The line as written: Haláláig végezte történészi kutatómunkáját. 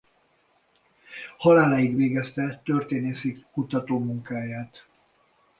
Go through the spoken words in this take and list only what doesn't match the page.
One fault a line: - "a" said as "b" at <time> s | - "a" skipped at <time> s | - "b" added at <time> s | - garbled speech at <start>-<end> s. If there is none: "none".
none